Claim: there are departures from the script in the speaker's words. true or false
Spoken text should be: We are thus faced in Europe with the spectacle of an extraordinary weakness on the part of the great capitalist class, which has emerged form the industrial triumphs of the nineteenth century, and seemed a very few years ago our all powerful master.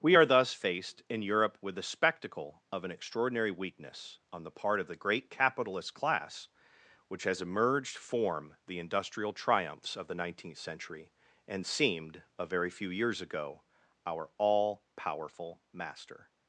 false